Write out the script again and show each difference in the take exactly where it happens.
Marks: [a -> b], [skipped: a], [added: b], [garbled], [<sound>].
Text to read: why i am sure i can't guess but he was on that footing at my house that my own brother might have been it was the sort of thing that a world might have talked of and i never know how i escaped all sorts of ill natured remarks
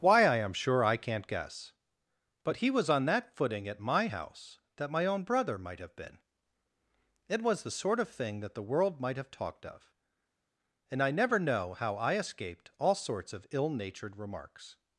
why i am sure i can't guess but he was on that footing at my house that my own brother might have been it was the sort of thing that [a -> the] world might have talked of and i never know how i escaped all sorts of ill natured remarks